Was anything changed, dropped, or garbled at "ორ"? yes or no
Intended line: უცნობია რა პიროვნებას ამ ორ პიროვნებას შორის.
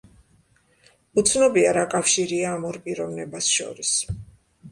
no